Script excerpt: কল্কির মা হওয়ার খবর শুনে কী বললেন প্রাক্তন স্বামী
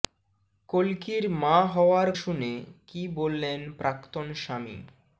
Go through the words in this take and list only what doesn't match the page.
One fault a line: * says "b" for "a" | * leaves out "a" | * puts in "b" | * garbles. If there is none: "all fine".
* leaves out "খবর"